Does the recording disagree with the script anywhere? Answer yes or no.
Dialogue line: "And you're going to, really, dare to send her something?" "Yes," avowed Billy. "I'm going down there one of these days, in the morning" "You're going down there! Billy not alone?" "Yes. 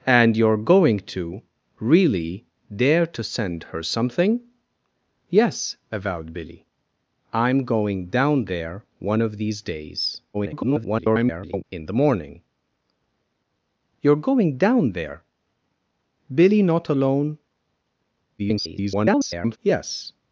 yes